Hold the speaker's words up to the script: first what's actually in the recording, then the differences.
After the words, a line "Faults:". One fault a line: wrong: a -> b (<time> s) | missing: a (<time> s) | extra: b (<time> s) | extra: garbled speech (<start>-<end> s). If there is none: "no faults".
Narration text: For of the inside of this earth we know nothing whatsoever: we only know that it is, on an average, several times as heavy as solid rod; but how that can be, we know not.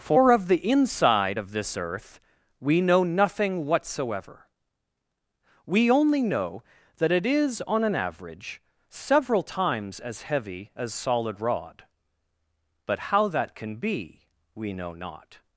For of the inside of this earth we know nothing whatsoever: we only know that it is, on an average, several times as heavy as solid rod; but how that can be, we know not.
Faults:
no faults